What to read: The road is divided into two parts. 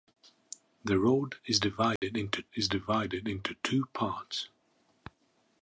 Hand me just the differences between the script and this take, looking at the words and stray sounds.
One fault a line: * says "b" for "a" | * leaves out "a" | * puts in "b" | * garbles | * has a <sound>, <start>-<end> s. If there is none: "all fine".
* has a dropout, 2.0-2.0 s
* puts in "is divided into"